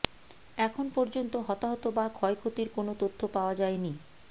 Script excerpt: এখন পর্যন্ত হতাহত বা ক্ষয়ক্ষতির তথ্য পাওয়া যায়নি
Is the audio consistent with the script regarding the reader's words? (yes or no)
no